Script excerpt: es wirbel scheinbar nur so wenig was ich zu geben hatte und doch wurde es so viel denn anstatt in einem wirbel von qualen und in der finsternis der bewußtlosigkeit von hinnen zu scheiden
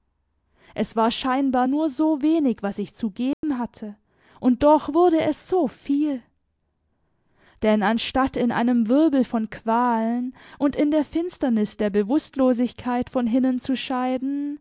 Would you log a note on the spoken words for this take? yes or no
yes